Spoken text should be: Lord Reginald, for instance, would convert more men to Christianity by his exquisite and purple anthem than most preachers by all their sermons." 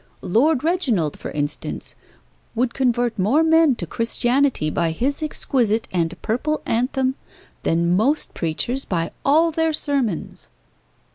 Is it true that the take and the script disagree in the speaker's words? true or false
false